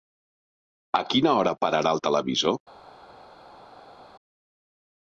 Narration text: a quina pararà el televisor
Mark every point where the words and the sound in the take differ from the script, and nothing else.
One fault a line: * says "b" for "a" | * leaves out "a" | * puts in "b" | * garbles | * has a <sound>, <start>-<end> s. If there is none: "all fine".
* puts in "hora"